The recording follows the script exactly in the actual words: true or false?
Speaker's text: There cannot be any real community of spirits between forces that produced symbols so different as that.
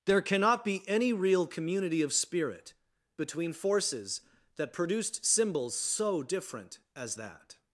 false